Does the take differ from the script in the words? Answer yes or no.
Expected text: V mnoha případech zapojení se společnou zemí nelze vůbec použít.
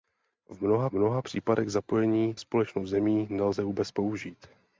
yes